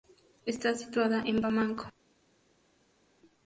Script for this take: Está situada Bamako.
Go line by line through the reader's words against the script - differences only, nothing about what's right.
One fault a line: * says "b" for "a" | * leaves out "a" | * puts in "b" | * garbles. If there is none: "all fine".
* puts in "en"